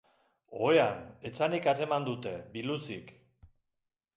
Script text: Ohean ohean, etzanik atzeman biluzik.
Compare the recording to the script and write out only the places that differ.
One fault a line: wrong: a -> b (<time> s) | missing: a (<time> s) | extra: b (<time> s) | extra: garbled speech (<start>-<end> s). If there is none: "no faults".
missing: ohean (1.0 s)
extra: dute (2.1 s)